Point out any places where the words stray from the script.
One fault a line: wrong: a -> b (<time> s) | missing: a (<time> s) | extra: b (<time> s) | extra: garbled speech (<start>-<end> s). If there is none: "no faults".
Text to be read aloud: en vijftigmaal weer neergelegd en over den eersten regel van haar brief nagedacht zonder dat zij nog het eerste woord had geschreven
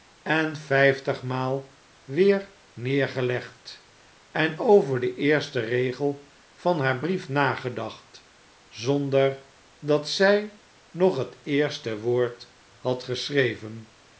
no faults